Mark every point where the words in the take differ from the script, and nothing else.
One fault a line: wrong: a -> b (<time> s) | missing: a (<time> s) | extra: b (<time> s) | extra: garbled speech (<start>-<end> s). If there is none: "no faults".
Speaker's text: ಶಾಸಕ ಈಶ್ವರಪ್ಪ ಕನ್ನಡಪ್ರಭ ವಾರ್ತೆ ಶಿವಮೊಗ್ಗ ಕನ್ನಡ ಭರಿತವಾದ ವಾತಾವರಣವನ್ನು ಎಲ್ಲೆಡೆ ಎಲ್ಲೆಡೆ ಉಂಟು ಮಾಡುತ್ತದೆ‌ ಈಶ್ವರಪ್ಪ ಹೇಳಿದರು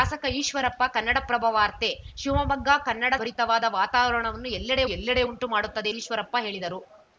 no faults